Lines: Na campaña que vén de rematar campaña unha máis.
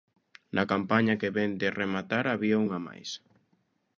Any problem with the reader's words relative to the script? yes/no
yes